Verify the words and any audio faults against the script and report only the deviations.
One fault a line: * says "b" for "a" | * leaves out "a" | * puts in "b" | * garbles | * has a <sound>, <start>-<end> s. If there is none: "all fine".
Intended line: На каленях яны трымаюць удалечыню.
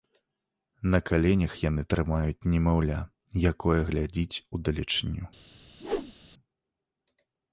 * puts in "немаўля якое глядзіць"
* has a whoosh, 5.8-6.1 s